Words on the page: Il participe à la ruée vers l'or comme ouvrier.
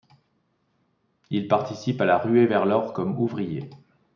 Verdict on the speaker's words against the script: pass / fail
pass